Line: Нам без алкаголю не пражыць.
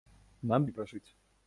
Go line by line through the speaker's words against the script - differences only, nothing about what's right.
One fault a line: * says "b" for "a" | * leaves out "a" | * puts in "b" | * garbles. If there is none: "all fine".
* leaves out "без алкаголю"